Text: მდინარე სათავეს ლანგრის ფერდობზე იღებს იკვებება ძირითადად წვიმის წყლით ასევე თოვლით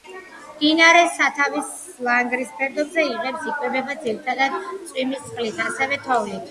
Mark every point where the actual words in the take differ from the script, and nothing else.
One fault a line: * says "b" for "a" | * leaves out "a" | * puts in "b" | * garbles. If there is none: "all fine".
all fine